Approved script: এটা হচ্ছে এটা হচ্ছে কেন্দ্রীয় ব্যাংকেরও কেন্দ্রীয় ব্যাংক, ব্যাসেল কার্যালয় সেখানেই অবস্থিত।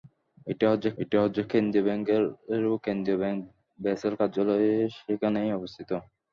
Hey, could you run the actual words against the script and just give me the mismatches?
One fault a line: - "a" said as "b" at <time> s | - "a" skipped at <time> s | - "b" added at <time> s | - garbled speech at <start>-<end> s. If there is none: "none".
none